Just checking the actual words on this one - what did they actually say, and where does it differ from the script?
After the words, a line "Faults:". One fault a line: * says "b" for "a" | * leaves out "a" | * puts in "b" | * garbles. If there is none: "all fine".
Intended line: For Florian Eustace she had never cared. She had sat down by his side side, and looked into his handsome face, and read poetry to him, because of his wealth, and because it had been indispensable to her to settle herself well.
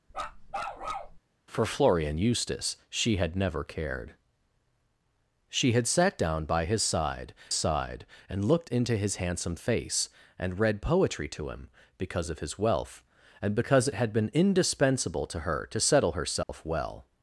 For Florian Eustace she had never cared. She had sat down by his side side, and looked into his handsome face, and read poetry to him, because of his wealth, and because it had been indispensable to her to settle herself well.
Faults:
all fine